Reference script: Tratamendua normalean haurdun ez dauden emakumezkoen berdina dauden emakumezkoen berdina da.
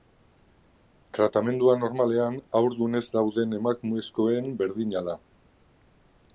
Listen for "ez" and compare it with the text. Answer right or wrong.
right